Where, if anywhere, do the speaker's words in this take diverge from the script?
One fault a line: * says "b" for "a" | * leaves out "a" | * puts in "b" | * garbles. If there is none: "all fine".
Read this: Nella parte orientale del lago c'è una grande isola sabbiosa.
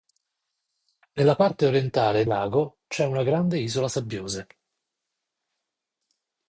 * leaves out "del"